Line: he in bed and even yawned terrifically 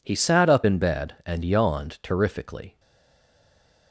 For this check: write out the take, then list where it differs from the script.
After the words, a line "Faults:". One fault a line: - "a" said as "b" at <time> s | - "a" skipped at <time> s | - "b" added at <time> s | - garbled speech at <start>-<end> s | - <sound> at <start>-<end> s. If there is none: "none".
he sat up in bed and yawned terrifically
Faults:
- "sat up" added at 0.1 s
- "even" skipped at 1.4 s